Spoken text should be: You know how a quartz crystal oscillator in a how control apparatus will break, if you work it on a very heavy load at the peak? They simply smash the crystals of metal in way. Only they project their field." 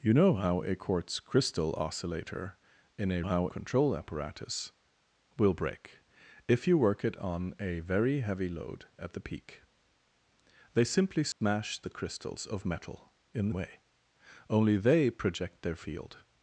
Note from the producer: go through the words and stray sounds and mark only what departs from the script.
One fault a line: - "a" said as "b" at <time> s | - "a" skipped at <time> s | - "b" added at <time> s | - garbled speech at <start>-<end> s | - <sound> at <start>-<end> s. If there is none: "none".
- dropout at 11.3-11.4 s